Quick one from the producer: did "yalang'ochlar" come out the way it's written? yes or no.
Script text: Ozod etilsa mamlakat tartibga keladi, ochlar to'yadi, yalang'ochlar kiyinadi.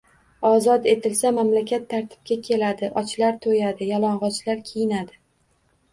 yes